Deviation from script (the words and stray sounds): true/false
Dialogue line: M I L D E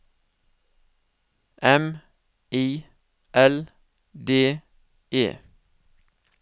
false